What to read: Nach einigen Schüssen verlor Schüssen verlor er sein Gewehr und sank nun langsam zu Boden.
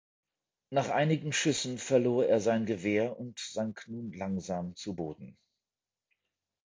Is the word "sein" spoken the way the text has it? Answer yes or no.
yes